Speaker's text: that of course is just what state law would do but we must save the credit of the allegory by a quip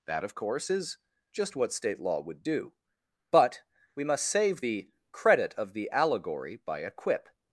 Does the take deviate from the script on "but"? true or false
false